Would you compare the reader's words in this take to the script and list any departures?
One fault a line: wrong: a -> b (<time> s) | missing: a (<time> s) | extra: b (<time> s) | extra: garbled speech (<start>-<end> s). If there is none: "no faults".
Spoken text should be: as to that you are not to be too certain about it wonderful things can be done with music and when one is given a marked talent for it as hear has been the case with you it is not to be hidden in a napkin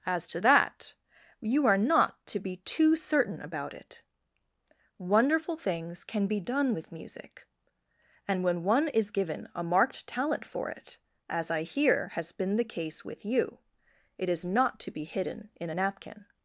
extra: i (11.5 s)